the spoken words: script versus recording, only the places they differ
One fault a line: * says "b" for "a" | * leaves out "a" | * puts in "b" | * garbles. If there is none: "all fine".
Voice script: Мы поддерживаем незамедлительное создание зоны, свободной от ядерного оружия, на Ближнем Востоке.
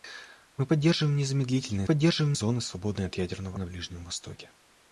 * says "поддерживаем" for "создание"
* leaves out "оружия"